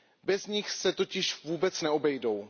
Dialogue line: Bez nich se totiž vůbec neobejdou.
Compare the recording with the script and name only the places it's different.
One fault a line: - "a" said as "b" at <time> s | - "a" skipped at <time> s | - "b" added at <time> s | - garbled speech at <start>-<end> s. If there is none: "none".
none